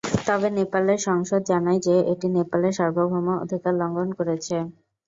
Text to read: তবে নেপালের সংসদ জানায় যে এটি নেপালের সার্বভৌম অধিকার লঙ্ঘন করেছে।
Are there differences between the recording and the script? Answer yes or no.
no